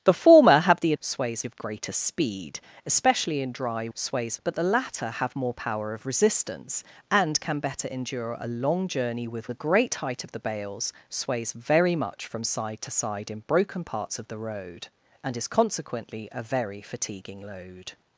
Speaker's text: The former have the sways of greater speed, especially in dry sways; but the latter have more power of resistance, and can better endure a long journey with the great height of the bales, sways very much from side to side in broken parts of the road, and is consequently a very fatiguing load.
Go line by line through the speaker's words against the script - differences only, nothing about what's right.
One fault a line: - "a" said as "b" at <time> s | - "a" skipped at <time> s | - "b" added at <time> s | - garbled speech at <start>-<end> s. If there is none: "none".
none